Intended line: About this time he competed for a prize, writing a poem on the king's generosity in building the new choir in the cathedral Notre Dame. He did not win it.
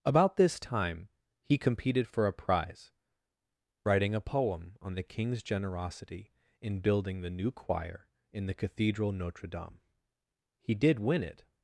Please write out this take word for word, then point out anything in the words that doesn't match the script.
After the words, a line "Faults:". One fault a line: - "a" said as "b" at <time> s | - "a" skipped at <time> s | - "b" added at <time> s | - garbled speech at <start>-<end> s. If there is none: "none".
About this time he competed for a prize, writing a poem on the king's generosity in building the new choir in the cathedral Notre Dame. He did win it.
Faults:
- "not" skipped at 11.0 s